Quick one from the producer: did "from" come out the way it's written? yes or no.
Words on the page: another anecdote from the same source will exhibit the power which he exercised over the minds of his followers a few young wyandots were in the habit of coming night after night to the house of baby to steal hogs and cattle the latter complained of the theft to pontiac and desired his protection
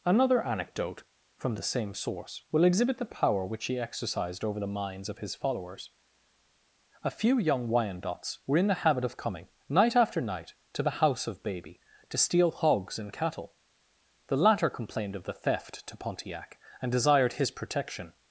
yes